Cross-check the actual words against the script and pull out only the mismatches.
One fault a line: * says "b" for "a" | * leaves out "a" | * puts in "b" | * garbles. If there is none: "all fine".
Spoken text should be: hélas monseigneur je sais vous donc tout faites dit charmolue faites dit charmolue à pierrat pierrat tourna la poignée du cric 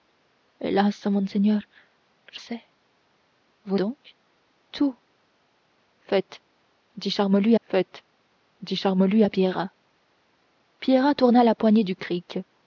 all fine